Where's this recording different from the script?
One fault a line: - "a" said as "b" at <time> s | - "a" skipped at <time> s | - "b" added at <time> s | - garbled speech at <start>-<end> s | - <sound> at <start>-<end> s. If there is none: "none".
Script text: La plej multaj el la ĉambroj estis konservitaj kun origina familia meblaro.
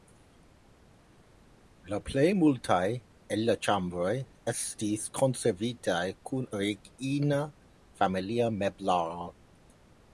none